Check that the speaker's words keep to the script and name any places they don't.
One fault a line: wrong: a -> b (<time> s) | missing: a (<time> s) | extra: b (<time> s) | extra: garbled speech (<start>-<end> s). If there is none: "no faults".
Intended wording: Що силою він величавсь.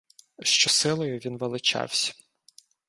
no faults